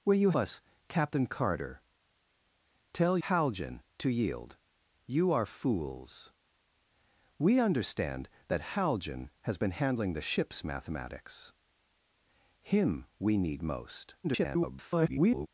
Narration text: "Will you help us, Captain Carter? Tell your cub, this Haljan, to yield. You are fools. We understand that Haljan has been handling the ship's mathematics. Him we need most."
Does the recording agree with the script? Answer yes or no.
no